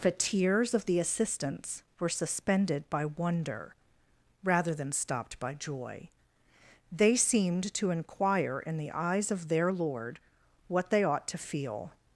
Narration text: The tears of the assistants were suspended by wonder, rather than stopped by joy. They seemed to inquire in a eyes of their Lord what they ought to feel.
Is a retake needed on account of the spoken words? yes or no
yes